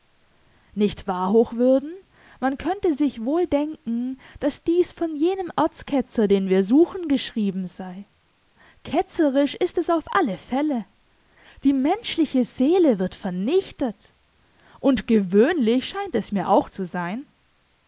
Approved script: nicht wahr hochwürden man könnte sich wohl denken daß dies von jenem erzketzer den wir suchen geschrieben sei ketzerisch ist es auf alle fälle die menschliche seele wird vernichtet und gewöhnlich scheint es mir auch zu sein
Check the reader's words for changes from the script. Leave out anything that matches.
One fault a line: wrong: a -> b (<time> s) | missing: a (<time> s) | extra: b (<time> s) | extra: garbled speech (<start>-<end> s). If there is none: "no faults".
no faults